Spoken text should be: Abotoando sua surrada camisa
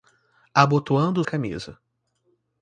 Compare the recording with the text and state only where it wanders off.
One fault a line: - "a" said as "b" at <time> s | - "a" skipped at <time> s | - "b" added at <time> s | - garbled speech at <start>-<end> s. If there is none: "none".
- "sua surrada" skipped at 1.2 s